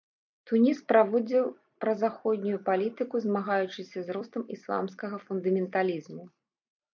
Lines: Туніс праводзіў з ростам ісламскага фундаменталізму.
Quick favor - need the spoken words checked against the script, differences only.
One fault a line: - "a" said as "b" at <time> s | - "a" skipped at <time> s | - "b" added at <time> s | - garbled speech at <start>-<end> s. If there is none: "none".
- "празаходнюю палітыку змагаючыся" added at 1.8 s